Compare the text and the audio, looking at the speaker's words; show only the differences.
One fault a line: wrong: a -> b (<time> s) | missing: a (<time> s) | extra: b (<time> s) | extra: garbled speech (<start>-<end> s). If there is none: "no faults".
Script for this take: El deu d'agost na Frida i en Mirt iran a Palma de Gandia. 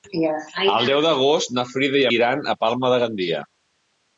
missing: en Mirt (2.0 s)